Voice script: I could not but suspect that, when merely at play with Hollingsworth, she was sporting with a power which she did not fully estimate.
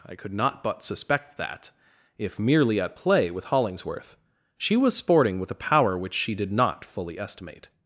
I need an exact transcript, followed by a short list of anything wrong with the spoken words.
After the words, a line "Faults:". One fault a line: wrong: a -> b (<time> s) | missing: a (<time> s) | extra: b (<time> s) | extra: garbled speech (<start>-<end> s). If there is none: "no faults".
I could not but suspect that, if merely at play with Hollingsworth, she was sporting with a power which she did not fully estimate.
Faults:
wrong: when -> if (2.2 s)